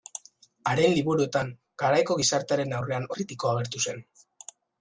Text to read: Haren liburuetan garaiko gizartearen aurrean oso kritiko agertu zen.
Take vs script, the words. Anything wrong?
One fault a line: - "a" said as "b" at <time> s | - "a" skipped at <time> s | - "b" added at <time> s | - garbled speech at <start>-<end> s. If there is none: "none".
- "oso" skipped at 3.1 s